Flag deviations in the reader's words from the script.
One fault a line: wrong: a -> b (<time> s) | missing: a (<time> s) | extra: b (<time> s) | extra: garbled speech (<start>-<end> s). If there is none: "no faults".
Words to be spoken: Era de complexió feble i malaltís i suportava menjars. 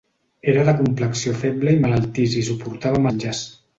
no faults